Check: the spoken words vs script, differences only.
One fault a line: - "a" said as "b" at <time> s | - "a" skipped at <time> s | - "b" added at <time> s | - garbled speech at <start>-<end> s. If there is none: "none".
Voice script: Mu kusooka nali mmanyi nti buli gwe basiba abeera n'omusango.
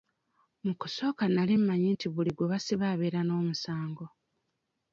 none